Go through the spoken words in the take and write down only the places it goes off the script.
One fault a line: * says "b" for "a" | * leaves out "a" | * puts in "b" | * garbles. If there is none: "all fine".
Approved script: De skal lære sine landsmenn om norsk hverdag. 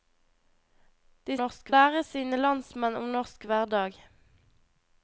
* says "norsk" for "skal"